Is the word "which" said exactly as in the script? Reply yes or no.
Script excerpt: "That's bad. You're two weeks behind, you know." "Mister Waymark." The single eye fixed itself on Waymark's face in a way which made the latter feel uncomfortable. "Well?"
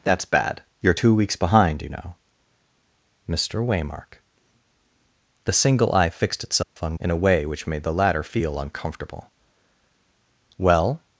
yes